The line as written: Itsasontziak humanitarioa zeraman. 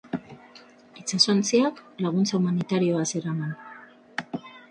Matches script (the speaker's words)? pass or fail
fail